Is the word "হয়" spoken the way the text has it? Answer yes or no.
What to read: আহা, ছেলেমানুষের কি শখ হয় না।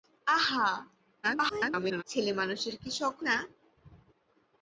no